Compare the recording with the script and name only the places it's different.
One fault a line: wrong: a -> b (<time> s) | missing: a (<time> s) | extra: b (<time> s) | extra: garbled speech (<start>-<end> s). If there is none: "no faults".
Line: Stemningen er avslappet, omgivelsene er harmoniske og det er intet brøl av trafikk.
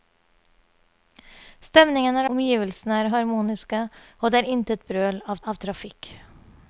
missing: avslappet (2.3 s)
extra: av (5.5 s)